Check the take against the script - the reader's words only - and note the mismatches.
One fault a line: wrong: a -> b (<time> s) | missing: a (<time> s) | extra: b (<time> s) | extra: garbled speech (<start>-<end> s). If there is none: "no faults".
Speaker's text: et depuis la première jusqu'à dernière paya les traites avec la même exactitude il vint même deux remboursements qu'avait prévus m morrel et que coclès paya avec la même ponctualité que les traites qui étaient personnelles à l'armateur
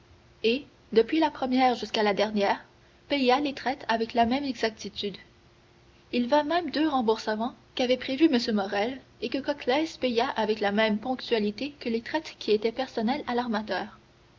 extra: la (2.0 s)